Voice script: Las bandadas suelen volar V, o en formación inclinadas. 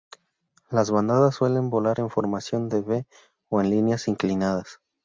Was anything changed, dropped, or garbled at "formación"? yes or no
yes